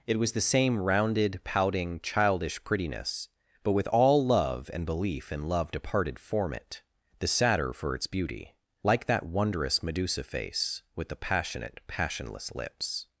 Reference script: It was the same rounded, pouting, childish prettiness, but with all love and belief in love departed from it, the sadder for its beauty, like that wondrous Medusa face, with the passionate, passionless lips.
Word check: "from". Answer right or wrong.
wrong